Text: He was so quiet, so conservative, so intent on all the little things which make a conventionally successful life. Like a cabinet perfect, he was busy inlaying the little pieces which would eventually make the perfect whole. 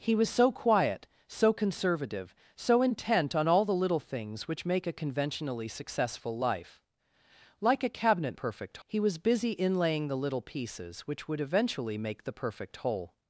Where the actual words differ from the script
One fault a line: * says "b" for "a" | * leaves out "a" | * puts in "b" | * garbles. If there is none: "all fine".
all fine